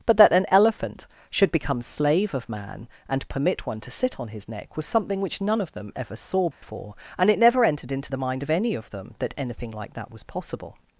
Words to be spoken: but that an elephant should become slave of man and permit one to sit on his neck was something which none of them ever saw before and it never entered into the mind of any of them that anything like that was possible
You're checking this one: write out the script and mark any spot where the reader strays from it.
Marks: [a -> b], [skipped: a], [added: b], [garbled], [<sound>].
but that an elephant should become slave of man and permit one to sit on his neck was something which none of them ever saw before [dropout] and it never entered into the mind of any of them that anything like that was possible